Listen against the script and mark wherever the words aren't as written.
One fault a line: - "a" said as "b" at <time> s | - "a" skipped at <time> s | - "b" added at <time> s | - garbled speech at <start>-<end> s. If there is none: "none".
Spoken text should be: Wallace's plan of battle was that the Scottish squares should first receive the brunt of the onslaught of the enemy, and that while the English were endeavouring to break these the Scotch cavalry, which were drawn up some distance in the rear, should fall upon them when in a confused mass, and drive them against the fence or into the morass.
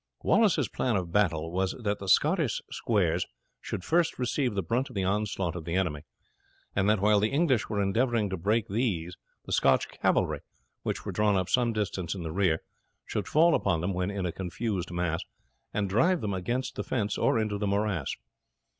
none